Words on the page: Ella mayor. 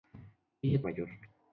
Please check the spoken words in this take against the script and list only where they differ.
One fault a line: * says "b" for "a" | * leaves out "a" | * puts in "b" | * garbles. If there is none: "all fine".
all fine